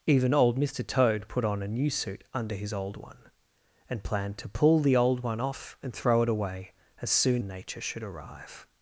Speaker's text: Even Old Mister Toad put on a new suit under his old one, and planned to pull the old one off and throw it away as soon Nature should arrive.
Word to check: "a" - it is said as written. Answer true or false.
true